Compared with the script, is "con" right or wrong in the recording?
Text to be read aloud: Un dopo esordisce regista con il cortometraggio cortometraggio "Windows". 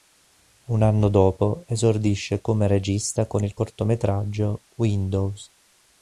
right